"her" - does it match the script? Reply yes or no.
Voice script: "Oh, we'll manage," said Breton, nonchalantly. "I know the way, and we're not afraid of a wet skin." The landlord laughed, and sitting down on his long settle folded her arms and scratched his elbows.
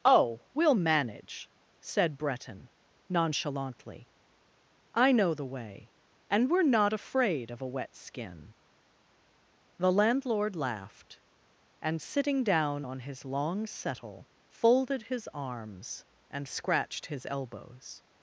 no